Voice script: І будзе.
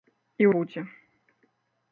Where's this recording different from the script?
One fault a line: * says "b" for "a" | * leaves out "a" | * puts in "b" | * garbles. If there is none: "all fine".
all fine